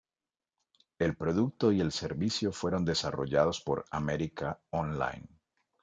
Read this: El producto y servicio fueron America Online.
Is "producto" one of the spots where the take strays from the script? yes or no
no